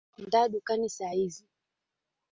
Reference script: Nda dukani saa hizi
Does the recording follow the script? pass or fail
pass